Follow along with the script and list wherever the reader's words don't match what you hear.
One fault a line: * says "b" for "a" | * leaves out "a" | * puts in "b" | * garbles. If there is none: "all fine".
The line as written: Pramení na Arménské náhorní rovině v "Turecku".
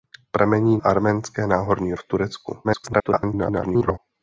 * leaves out "na"
* leaves out "rovině"
* garbles